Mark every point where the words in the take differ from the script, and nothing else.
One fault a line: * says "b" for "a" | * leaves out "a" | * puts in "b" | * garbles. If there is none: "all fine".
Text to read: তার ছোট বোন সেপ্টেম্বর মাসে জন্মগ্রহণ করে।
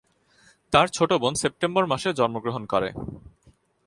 all fine